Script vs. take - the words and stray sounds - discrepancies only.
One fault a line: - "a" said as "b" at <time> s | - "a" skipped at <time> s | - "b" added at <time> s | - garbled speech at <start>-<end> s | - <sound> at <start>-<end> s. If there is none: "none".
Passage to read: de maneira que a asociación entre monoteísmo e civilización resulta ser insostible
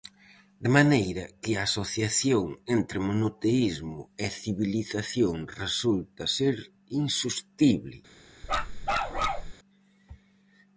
- bark at 8.4-9.5 s